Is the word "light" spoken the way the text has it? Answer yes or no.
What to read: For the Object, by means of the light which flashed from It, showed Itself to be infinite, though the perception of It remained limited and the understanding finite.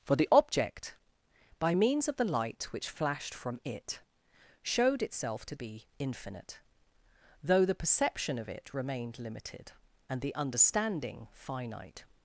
yes